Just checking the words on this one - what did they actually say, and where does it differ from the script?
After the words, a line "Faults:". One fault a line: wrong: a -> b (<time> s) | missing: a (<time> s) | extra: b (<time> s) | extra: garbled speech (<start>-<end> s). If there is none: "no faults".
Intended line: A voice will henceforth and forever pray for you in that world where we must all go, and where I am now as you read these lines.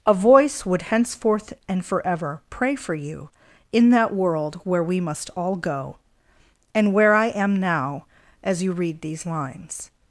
A voice would henceforth and forever pray for you in that world where we must all go, and where I am now as you read these lines.
Faults:
wrong: will -> would (0.7 s)